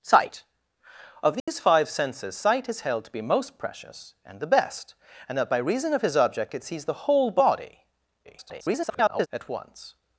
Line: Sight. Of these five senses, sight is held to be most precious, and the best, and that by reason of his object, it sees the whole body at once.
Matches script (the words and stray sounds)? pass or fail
fail